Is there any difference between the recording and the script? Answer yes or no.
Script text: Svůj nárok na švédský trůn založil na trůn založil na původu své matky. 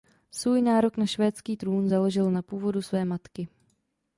yes